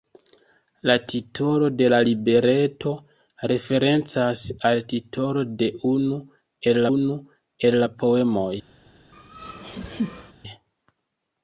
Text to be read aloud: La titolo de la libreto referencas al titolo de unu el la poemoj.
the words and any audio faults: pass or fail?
fail